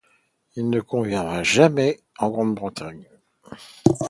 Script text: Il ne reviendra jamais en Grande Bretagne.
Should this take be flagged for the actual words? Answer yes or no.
no